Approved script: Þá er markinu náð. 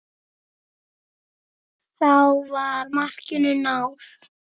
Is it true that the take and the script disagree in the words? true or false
true